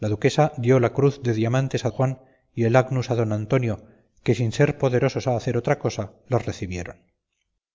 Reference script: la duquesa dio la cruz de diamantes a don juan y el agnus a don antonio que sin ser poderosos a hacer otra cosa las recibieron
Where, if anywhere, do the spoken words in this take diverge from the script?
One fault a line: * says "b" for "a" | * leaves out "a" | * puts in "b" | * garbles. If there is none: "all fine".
* leaves out "don"